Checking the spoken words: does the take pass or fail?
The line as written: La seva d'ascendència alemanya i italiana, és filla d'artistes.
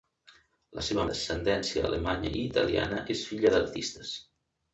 pass